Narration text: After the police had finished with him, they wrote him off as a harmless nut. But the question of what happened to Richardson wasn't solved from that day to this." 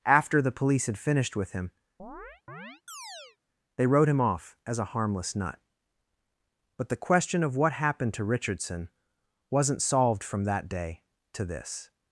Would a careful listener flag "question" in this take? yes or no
no